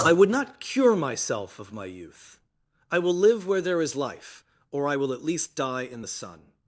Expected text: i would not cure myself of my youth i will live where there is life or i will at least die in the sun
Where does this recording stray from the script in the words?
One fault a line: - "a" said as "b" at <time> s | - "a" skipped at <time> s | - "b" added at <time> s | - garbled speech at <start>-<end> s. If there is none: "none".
none